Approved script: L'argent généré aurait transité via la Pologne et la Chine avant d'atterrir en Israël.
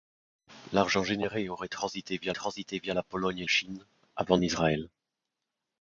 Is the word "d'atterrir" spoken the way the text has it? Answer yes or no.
no